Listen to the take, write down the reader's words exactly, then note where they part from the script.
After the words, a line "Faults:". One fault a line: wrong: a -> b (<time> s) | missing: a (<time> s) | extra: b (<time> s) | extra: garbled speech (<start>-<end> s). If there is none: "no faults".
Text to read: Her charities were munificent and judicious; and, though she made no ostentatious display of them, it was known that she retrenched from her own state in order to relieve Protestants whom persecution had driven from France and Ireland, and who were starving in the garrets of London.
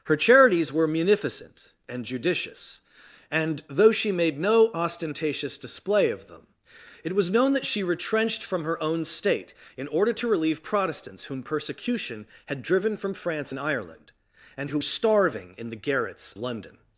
Her charities were munificent and judicious; and, though she made no ostentatious display of them, it was known that she retrenched from her own state in order to relieve Protestants whom persecution had driven from France and Ireland, and who starving in the garrets London.
Faults:
missing: were (14.8 s)
missing: of (16.3 s)